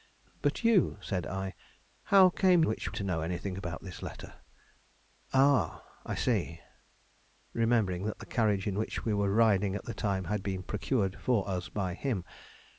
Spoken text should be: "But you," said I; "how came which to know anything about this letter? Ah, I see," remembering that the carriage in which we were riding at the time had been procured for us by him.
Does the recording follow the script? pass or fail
pass